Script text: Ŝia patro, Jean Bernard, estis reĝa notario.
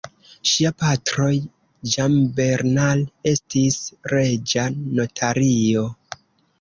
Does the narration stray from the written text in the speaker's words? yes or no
no